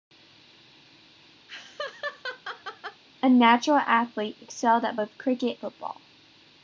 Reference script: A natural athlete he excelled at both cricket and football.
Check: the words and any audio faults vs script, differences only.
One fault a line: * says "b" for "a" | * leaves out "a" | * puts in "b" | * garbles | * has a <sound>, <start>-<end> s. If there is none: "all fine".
* has a laugh, 1.5-3.0 s
* leaves out "he"
* leaves out "and"